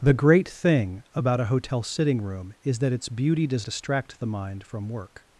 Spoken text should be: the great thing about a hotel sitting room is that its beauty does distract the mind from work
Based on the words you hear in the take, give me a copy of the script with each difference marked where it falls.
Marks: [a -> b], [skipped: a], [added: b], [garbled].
the great thing about a hotel sitting room is that its beauty does distract the mind from work